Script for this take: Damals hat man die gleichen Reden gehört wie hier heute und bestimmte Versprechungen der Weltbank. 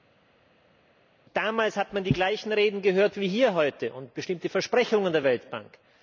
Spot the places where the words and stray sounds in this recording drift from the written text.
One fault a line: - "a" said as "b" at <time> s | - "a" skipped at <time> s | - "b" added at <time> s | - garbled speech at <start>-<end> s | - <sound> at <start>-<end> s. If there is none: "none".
none